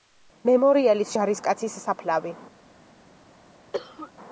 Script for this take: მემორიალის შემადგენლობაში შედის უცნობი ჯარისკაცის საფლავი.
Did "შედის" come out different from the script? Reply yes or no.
yes